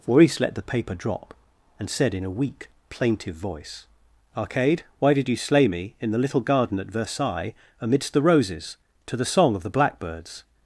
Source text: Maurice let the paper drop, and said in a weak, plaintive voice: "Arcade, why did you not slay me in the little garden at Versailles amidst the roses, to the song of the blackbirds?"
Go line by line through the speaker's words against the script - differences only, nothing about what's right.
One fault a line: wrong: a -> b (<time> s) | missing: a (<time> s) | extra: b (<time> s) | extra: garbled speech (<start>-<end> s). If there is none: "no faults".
missing: not (5.3 s)